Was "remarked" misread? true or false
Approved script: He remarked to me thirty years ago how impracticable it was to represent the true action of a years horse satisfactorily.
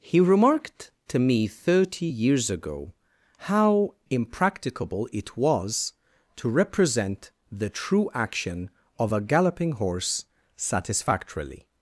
false